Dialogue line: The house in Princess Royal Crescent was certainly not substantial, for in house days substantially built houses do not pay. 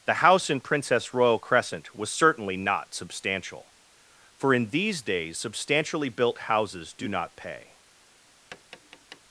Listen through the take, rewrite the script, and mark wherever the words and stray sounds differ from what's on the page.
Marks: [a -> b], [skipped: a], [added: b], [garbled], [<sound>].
The house in Princess Royal Crescent was certainly not substantial, for in [house -> these] days substantially built houses do not pay. [tap]